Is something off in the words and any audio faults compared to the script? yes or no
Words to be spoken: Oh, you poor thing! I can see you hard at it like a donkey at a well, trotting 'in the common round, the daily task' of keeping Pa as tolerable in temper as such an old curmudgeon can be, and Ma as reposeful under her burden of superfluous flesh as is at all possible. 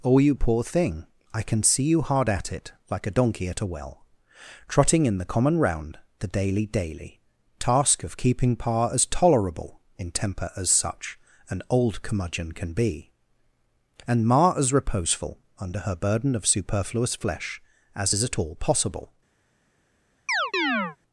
yes